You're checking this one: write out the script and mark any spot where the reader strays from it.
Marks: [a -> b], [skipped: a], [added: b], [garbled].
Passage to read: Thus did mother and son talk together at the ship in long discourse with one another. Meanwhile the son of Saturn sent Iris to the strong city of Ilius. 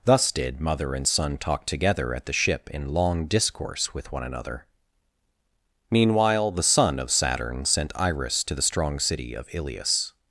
Thus did mother and son talk together at the ship in long discourse with one another. Meanwhile the son of Saturn sent Iris to the strong city of Ilius.